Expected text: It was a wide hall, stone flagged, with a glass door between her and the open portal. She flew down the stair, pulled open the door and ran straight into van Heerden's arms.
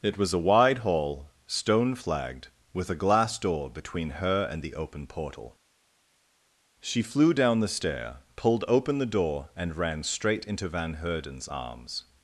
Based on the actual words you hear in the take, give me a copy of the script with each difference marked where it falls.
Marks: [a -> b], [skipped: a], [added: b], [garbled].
It was a wide hall, stone flagged, with a glass door between her and the open portal. She flew down the stair, pulled open the door and ran straight into van Heerden's arms.